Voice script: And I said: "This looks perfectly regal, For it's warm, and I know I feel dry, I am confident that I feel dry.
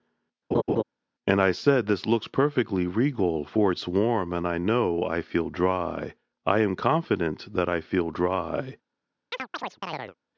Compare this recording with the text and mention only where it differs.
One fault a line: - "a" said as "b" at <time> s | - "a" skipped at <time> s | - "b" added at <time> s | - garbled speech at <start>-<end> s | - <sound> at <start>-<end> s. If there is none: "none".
- laugh at 0.5-0.8 s
- chirp at 9.3-10.2 s